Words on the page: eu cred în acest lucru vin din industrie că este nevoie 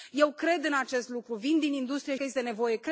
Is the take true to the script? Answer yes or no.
yes